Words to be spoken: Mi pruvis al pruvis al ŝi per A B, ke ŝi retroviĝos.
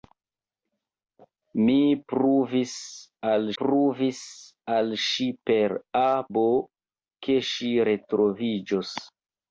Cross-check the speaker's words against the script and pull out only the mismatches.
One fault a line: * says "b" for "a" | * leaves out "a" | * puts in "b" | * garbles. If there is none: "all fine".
all fine